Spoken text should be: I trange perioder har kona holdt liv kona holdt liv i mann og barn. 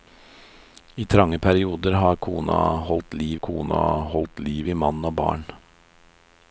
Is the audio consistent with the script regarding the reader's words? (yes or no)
yes